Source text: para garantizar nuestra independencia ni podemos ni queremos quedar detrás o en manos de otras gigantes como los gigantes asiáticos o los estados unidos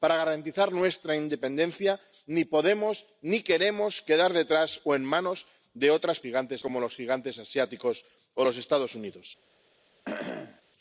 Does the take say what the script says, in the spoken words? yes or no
yes